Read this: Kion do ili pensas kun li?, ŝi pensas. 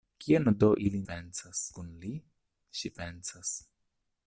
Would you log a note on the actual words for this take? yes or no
no